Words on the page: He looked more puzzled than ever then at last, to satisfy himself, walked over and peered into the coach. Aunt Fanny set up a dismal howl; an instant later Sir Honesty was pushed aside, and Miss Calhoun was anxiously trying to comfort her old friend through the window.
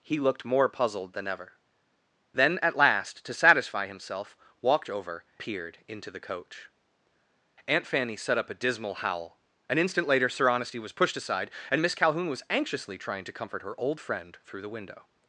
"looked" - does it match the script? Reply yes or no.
yes